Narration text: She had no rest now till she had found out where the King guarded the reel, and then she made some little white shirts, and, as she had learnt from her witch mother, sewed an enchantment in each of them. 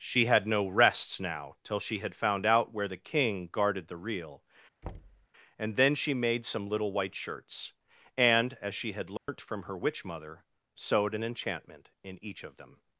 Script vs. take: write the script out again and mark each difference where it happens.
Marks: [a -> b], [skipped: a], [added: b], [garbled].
She had no [rest -> rests] now till she had found out where the King guarded the reel, and then she made some little white shirts, and, as she had learnt from her witch mother, sewed an enchantment in each of them.